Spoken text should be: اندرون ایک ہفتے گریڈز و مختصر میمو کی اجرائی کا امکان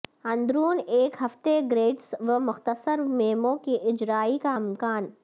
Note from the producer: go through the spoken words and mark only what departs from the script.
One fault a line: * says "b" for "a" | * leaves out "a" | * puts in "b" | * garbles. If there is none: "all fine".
all fine